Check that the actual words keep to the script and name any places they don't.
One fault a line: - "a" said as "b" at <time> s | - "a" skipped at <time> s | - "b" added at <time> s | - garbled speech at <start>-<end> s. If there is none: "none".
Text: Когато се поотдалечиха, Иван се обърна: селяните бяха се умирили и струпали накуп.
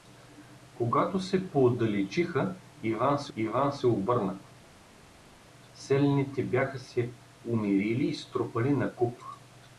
- "Иван се" added at 3.4 s